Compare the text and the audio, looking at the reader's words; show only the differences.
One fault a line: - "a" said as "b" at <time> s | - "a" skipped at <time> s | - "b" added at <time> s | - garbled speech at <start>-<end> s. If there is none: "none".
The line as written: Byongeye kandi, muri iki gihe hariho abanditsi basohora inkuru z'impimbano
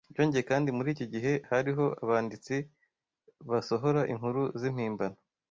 none